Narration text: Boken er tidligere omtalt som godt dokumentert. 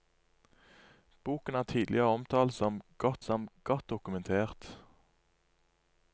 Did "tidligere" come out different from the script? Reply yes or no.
no